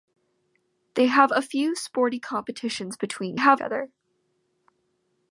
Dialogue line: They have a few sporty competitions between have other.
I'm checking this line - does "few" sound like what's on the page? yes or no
yes